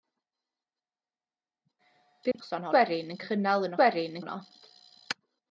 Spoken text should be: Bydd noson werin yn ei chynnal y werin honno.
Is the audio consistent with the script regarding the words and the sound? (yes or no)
no